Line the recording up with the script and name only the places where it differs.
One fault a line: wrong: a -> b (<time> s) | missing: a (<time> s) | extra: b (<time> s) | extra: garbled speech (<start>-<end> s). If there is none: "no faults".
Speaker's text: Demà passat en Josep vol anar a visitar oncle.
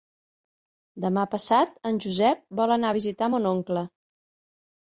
extra: mon (3.3 s)